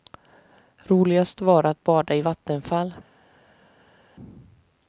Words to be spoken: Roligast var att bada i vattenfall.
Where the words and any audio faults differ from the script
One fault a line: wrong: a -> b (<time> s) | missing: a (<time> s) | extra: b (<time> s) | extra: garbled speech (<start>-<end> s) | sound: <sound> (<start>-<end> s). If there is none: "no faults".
no faults